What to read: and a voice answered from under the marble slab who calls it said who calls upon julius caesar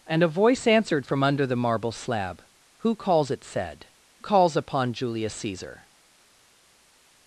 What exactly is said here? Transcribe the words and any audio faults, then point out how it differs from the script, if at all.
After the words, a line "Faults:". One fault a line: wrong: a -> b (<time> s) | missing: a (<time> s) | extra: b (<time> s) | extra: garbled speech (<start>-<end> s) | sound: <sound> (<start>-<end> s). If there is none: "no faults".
and a voice answered from under the marble slab who calls it said calls upon julius caesar
Faults:
missing: who (3.9 s)